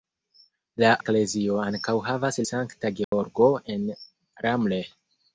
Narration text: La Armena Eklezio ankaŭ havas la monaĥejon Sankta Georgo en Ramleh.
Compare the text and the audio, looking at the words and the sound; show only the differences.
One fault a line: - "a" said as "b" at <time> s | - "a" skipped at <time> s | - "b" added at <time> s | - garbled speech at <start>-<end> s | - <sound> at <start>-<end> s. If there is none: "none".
- "Armena" skipped at 0.9 s
- "la monaĥejon" skipped at 2.4 s
- dropout at 3.0-3.1 s